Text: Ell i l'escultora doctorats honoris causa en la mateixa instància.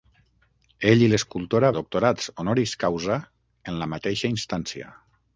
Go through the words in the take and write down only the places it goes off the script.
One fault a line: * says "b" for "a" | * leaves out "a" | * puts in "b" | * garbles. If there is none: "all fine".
all fine